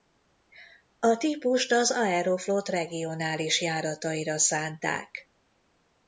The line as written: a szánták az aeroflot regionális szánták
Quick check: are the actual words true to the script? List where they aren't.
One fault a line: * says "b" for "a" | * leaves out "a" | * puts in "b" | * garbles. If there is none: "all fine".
* says "típust" for "szánták"
* puts in "járataira"